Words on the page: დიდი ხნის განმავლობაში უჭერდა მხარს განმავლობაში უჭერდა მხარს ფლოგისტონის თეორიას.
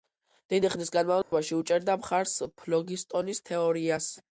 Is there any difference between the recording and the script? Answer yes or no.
yes